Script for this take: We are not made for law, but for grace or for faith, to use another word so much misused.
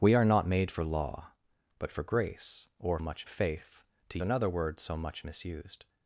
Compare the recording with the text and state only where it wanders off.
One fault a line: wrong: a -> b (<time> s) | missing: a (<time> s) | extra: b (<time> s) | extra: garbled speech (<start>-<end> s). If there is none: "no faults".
wrong: for -> much (3.0 s)
missing: use (4.2 s)